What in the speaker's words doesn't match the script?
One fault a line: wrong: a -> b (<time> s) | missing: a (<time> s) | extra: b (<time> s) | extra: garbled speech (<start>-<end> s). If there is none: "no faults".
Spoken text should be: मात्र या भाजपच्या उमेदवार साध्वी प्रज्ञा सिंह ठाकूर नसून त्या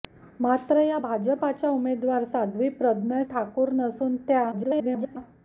missing: सिंह (3.2 s)
extra: garbled speech (4.5-5.2 s)